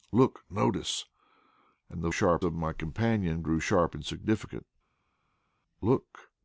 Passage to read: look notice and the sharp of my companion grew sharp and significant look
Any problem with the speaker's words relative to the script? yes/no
no